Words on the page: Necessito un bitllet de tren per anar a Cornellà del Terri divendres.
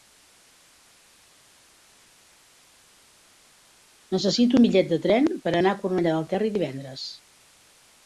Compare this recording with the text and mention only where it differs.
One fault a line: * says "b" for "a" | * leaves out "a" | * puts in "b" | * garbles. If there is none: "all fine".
all fine